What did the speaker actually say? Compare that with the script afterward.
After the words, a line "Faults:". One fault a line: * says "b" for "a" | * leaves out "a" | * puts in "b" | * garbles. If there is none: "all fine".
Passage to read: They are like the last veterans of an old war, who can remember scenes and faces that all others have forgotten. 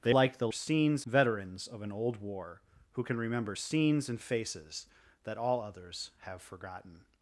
They like the scenes veterans of an old war, who can remember scenes and faces that all others have forgotten.
Faults:
* leaves out "are"
* says "scenes" for "last"